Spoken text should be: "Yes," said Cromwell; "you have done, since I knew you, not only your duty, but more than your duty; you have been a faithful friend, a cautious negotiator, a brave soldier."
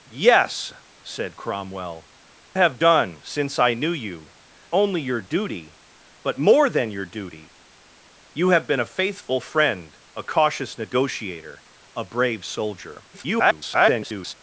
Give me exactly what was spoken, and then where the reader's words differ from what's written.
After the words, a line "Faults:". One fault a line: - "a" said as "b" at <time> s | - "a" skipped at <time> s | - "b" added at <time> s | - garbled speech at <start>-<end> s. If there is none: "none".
"Yes," said Cromwell; "have done, since I knew you, only your duty, but more than your duty; you have been a faithful friend, a cautious negotiator, a brave soldier." [garbled]
Faults:
- "you" skipped at 2.1 s
- "not" skipped at 4.3 s
- garbled speech at 13.1-14.3 s